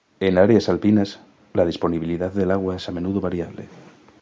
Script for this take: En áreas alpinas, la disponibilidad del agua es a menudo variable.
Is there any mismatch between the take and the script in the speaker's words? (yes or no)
no